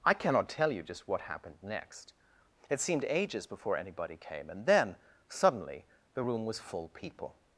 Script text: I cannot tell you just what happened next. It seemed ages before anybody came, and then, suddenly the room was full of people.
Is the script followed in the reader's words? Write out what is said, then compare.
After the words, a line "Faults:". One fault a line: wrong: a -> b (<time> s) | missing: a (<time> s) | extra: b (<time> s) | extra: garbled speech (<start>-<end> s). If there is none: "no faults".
I cannot tell you just what happened next. It seemed ages before anybody came, and then, suddenly the room was full people.
Faults:
missing: of (6.9 s)